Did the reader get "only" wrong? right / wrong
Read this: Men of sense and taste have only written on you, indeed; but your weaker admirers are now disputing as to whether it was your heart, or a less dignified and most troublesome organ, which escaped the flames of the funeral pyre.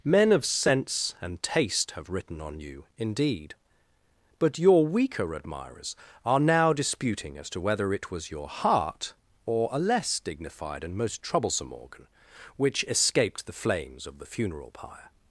wrong